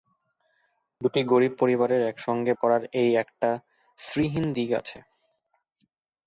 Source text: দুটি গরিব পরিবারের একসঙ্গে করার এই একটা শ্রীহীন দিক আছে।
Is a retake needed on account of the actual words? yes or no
no